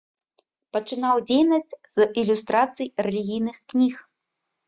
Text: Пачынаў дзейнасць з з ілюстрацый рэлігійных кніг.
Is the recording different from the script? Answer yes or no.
yes